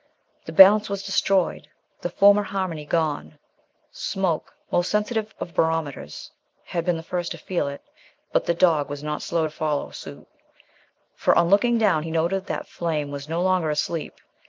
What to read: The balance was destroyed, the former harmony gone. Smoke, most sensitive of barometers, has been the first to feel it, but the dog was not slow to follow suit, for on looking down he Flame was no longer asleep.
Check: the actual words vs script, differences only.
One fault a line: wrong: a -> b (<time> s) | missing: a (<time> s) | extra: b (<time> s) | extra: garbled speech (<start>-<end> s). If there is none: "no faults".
wrong: has -> had (6.6 s)
extra: noted that (12.1 s)